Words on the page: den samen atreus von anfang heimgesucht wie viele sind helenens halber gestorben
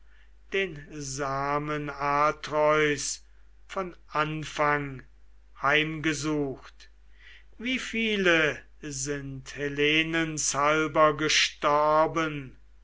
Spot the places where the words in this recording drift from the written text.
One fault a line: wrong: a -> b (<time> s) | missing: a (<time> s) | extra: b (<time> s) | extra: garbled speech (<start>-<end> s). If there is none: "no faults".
no faults